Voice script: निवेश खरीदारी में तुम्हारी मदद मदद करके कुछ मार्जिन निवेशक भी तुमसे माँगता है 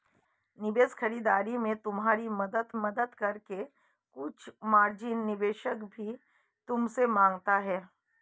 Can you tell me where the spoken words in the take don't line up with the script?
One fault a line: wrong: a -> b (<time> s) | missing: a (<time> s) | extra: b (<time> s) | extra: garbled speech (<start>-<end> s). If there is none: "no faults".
no faults